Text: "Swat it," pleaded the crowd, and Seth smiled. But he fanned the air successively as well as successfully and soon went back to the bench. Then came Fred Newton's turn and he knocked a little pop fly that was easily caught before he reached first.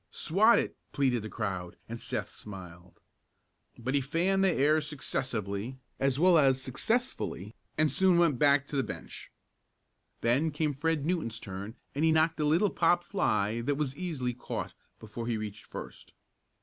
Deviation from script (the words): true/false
false